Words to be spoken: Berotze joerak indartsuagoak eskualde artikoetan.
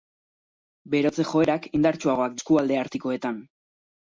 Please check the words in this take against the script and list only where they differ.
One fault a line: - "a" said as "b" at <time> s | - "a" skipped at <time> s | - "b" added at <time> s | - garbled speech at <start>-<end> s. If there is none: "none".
none